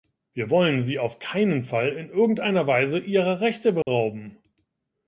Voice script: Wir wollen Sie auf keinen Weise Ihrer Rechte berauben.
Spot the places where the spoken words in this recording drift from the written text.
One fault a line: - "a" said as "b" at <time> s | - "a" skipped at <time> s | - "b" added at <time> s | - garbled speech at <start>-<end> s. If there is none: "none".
- "Fall in irgendeiner" added at 1.6 s